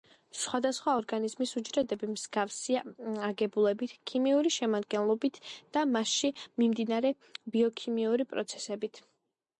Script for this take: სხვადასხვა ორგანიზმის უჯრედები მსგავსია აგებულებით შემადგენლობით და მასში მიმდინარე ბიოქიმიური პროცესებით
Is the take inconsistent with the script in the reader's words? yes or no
yes